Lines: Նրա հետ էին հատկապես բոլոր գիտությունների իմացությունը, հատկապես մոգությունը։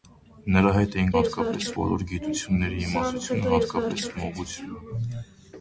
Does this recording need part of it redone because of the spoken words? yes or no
no